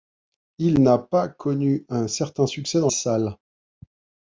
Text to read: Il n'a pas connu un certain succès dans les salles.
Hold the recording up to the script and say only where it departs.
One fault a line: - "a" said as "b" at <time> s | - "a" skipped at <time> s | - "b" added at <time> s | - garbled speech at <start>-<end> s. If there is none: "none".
- "les" skipped at 2.9 s